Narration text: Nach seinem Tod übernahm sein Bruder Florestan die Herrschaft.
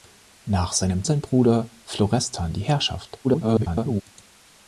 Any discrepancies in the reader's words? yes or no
yes